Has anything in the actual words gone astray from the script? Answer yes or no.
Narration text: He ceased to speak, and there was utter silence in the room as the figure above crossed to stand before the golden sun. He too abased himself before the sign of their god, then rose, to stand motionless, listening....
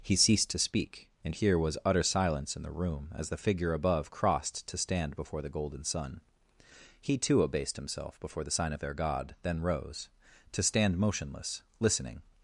yes